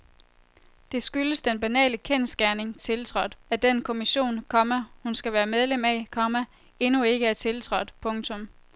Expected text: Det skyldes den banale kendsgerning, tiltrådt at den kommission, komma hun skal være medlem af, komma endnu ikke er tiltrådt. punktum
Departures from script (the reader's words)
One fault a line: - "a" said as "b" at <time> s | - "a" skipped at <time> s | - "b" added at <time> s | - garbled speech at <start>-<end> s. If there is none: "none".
none